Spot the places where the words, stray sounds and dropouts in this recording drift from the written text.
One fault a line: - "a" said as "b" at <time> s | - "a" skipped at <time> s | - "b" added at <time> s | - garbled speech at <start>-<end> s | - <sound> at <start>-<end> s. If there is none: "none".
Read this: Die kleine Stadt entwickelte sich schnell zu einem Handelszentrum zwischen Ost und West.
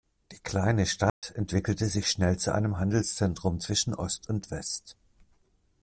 - dropout at 1.1-1.2 s